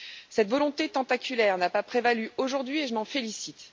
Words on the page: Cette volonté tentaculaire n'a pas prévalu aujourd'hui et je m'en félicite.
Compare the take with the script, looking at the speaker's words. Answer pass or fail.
pass